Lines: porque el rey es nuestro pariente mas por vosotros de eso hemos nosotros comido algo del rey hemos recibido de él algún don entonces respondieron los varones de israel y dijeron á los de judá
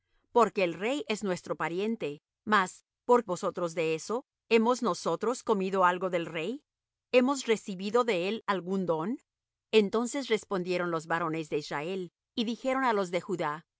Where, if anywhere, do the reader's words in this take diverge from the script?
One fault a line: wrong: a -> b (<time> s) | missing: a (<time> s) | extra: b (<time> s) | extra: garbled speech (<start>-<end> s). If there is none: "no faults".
no faults